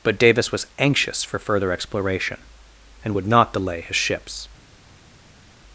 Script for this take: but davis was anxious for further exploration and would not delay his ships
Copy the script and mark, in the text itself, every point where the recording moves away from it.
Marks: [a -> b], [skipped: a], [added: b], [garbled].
but davis was anxious for further exploration and would not delay his ships